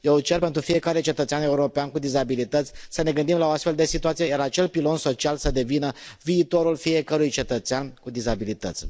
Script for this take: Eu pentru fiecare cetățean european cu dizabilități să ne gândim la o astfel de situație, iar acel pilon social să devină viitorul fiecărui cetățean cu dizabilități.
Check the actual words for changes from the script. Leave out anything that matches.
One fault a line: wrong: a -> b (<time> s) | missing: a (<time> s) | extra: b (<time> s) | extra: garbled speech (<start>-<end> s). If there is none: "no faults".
extra: cer (0.2 s)